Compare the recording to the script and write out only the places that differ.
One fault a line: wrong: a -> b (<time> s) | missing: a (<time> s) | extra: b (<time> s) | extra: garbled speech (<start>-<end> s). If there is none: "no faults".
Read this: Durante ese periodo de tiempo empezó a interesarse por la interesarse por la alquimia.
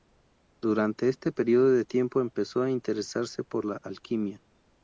wrong: ese -> este (1.1 s)
missing: interesarse por la (3.8 s)